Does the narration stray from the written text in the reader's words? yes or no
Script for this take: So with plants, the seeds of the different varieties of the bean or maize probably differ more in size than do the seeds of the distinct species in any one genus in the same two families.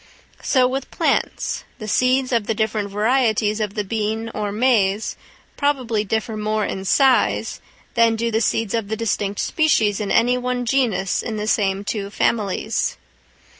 no